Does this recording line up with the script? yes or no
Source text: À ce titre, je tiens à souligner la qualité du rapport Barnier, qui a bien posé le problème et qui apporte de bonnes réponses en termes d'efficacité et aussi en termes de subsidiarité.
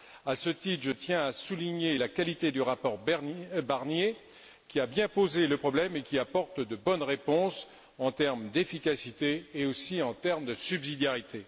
yes